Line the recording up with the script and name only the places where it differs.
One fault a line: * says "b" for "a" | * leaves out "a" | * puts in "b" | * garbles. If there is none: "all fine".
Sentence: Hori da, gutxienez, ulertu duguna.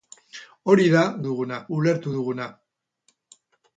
* says "duguna" for "gutxienez"